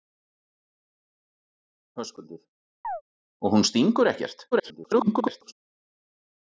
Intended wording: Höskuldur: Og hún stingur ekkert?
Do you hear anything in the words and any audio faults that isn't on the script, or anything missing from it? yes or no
yes